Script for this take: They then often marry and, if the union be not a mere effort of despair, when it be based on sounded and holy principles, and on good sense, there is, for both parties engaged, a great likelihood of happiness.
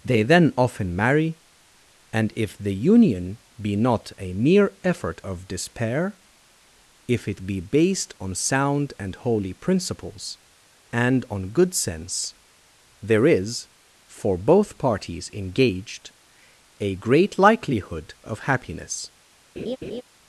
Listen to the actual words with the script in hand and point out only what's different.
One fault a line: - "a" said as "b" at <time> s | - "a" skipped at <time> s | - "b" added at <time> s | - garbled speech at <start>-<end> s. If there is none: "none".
- "when" said as "if" at 7.1 s
- "sounded" said as "sound" at 8.3 s